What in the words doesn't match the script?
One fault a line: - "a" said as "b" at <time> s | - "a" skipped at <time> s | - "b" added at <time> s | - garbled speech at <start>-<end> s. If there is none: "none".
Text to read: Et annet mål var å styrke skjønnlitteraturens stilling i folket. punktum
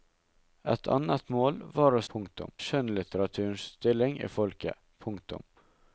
- "styrke" said as "punktum" at 2.1 s